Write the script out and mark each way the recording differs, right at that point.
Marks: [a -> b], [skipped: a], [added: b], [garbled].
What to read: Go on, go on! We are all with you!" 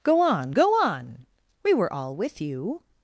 Go on, go on! We [are -> were] all with you!"